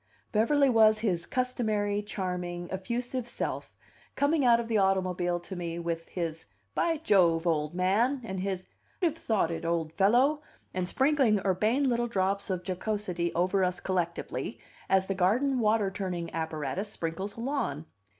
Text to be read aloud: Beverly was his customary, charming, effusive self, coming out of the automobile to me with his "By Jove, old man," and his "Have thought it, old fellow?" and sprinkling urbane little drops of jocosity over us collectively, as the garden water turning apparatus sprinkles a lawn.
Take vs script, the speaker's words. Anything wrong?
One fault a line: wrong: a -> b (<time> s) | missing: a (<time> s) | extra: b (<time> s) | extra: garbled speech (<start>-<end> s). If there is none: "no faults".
no faults